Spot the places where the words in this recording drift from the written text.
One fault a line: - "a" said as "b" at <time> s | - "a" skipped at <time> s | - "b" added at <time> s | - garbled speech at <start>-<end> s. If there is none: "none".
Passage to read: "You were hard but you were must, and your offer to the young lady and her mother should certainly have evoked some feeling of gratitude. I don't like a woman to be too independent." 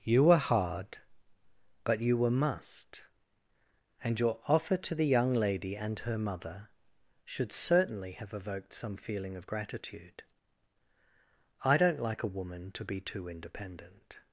none